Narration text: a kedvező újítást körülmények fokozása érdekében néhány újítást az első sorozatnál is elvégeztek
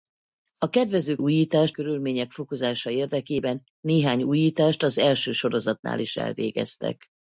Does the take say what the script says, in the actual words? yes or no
yes